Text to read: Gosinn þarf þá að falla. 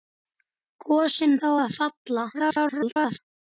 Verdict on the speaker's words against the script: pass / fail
fail